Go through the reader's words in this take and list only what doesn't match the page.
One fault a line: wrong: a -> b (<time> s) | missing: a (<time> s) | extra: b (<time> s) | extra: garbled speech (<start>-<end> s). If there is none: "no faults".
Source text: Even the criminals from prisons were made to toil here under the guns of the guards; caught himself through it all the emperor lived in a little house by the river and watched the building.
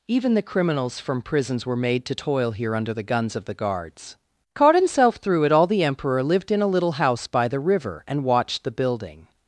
no faults